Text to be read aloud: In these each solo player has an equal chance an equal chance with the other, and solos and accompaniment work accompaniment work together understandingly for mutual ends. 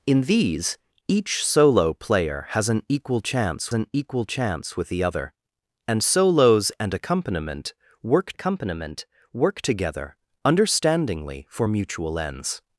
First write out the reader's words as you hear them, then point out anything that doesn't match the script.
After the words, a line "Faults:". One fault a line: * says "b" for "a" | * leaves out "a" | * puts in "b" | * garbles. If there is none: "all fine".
In these each solo player has an equal chance an equal chance with the other, and solos and accompaniment work accompaniment work together understandingly for mutual ends.
Faults:
all fine